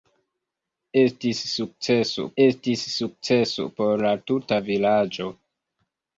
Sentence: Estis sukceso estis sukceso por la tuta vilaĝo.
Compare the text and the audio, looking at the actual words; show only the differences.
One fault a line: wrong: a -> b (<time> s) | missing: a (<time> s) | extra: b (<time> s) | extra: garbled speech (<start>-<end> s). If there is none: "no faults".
no faults